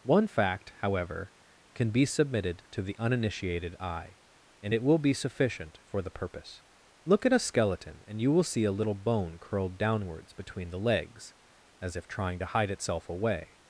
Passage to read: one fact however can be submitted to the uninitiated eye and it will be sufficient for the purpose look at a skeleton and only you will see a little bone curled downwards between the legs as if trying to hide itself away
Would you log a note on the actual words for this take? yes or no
yes